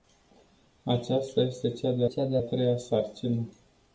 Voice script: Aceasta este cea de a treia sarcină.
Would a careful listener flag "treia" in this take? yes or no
no